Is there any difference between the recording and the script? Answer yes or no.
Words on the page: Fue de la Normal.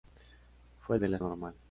no